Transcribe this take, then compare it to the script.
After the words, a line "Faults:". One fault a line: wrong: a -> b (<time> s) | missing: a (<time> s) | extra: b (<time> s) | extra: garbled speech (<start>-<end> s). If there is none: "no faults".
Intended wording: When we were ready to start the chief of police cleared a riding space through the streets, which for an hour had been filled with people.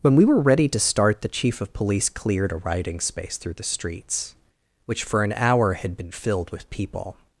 When we were ready to start the chief of police cleared a riding space through the streets, which for an hour had been filled with people.
Faults:
no faults